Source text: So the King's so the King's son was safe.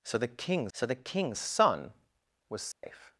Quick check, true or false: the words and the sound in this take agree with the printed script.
false